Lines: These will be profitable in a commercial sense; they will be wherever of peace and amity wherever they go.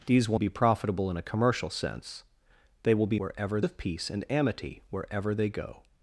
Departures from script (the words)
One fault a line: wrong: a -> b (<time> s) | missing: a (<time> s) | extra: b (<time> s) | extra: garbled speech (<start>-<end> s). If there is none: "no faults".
no faults